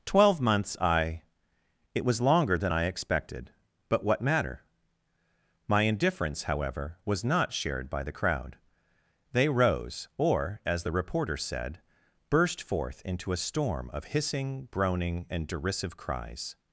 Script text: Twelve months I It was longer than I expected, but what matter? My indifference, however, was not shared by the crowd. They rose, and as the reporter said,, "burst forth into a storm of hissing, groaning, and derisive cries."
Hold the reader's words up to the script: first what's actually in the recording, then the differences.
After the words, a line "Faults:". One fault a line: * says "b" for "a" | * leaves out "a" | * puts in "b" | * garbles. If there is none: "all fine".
Twelve months I It was longer than I expected, but what matter? My indifference, however, was not shared by the crowd. They rose, or as the reporter said,, "burst forth into a storm of hissing, groaning, and derisive cries."
Faults:
* says "or" for "and"